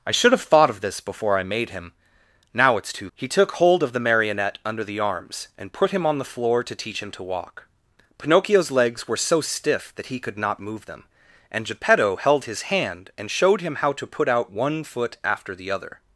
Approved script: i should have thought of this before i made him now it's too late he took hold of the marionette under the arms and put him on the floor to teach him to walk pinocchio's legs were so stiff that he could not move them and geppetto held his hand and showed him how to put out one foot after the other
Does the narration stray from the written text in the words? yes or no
yes